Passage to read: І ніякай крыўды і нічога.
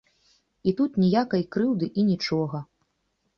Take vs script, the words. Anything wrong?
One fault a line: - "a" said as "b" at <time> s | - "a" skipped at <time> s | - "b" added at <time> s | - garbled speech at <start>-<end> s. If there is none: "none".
- "тут" added at 0.8 s